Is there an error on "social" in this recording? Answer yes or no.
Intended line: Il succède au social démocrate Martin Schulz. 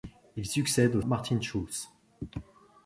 yes